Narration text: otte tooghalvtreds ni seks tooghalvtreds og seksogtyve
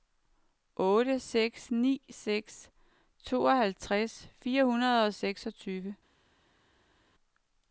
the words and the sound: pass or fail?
fail